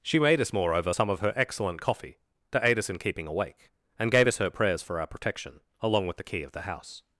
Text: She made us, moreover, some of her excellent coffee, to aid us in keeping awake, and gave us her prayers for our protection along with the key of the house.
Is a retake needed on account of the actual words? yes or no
no